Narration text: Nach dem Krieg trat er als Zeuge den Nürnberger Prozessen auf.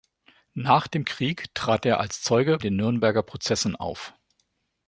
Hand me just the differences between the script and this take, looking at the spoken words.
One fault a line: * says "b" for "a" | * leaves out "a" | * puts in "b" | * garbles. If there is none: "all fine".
all fine